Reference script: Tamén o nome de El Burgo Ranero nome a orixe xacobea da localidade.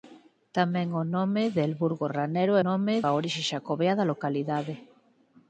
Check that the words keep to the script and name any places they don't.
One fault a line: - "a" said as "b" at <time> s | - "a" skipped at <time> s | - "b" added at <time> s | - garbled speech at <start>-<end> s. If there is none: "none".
none